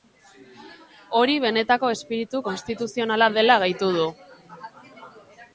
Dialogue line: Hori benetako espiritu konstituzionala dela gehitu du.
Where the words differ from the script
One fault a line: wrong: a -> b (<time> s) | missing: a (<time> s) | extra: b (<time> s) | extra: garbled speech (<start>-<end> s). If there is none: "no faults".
no faults